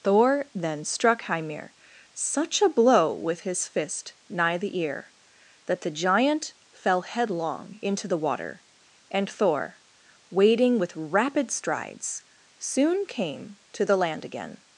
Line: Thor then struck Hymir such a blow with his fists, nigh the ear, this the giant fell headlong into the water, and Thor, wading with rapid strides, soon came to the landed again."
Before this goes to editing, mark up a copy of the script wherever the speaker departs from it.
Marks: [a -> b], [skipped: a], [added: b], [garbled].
Thor then struck Hymir such a blow with his [fists, -> fist] nigh the ear, [this -> that] the giant fell headlong into the water, and Thor, wading with rapid strides, soon came to the [landed -> land] again."